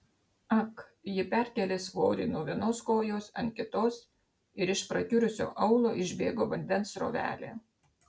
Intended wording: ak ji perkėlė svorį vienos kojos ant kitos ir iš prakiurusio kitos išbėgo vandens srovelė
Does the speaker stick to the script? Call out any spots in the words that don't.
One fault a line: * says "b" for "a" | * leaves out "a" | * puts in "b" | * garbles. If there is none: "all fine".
* puts in "nuo"
* says "aulo" for "kitos"